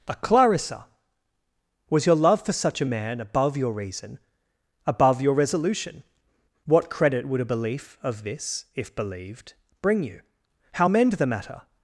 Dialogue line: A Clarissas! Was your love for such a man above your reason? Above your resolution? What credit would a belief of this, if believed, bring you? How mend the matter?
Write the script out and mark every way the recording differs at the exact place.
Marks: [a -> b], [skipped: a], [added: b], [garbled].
A [Clarissas! -> Clarissa] Was your love for such a man above your reason? Above your resolution? What credit would a belief of this, if believed, bring you? How mend the matter?